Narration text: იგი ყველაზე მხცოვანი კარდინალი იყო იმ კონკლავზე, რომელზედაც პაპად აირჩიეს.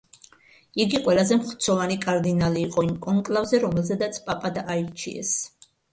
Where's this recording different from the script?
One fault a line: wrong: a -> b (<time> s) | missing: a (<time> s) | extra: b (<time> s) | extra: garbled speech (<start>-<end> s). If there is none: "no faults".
no faults